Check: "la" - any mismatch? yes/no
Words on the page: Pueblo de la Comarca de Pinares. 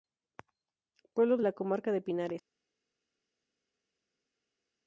no